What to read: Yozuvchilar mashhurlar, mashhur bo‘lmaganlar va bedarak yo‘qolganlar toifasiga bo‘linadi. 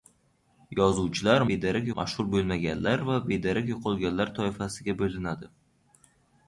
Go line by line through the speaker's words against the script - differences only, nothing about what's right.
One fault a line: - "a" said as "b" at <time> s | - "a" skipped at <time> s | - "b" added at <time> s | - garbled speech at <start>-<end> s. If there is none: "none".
- "mashhurlar" said as "bedarak" at 1.5 s